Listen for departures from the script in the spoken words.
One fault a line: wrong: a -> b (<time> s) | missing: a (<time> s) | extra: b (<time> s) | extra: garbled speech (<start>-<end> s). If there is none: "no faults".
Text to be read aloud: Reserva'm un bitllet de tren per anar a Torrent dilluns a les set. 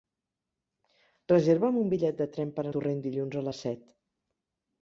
missing: anar (2.7 s)